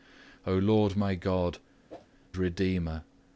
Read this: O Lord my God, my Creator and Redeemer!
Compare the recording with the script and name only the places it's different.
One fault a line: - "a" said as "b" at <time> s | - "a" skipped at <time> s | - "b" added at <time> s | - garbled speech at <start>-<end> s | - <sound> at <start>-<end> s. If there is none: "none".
- "my Creator and" skipped at 1.6 s
- whoosh at 1.9-2.1 s